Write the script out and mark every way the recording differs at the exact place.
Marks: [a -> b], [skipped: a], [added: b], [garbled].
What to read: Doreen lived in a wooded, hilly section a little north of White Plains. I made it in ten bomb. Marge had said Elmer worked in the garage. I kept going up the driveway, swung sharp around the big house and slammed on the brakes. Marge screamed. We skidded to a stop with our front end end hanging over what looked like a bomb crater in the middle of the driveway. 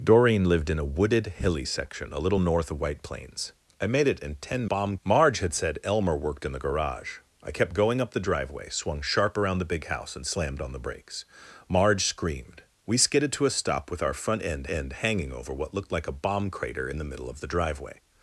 Doreen lived in a wooded, hilly section a little north of White Plains. I made it in ten bomb. Marge had said Elmer worked in the garage. I kept going up the driveway, swung sharp around the big house and slammed on the brakes. Marge screamed. We skidded to a stop with our front end end hanging over what looked like a bomb crater in the middle of the driveway.